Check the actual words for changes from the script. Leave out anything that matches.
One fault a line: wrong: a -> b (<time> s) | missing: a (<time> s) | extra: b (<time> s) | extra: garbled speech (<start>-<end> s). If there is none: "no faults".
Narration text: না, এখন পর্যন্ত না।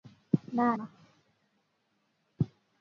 missing: এখন পর্যন্ত (0.7 s)